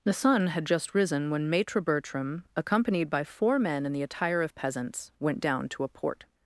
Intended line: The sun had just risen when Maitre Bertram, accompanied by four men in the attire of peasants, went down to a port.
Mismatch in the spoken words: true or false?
false